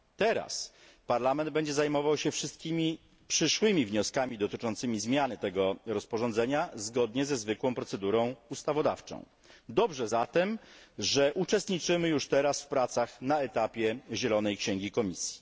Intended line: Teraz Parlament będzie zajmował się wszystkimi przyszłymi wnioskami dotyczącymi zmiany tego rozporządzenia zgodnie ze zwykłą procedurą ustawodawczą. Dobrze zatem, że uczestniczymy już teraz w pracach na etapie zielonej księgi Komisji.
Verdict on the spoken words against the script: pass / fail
pass